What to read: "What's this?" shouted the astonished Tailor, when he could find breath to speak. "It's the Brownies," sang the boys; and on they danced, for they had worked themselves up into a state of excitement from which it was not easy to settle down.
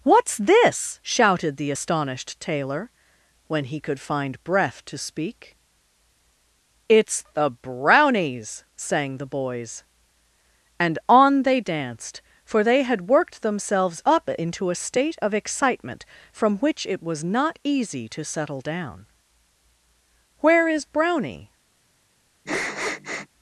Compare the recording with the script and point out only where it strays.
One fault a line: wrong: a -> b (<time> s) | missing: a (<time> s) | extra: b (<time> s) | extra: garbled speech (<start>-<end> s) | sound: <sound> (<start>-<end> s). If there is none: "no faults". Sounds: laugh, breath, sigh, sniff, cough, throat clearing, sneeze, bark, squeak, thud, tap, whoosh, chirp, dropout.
extra: Where is Brownie (20.4 s)
sound: sniff (22.5-23.3 s)